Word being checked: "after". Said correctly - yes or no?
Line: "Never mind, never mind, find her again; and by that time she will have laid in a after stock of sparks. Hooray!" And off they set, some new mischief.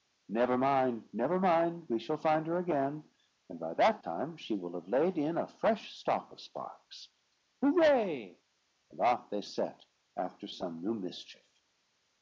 no